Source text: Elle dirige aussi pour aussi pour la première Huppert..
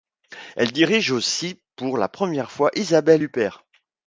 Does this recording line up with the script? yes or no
no